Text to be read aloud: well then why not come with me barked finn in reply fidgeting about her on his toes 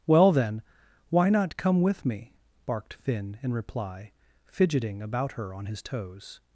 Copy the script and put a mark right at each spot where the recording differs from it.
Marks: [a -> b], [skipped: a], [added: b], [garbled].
well then why not come with me barked finn in reply fidgeting about her on his toes